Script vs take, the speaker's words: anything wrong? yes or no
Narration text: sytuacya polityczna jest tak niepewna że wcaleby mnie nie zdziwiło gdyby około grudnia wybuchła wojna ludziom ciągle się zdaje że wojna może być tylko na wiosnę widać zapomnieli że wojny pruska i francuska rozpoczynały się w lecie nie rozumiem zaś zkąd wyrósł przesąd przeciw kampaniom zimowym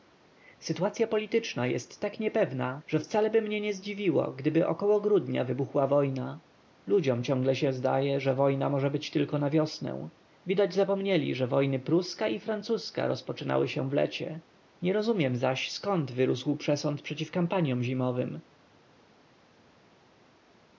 no